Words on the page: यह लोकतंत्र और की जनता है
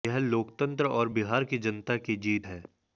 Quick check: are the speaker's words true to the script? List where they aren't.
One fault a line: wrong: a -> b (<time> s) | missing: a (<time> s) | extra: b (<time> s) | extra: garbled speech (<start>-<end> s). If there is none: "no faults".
extra: बिहार (1.1 s)
extra: की जीत (2.0 s)